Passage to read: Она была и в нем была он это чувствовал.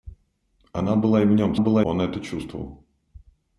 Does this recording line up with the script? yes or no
yes